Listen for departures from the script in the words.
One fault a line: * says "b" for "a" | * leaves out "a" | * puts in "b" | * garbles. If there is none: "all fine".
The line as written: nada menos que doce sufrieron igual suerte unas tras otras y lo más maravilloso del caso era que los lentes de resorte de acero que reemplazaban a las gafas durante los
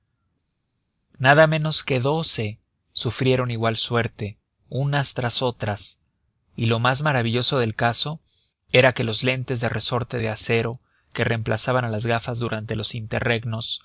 all fine